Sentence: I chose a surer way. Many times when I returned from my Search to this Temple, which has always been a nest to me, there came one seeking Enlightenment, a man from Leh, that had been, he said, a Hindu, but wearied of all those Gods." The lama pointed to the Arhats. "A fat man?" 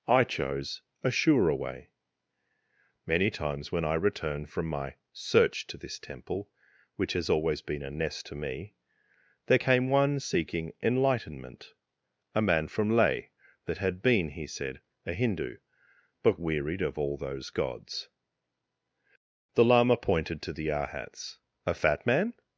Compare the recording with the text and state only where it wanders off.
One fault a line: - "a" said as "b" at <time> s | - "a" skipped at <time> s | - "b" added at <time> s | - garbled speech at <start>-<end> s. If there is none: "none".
- "returned" said as "return" at 4.0 s